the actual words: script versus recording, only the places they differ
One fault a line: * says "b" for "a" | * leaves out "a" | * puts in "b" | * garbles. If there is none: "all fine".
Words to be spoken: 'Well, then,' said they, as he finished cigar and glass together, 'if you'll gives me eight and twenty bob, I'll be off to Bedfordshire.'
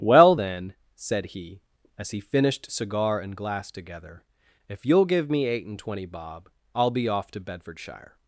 * says "he" for "they"
* says "give" for "gives"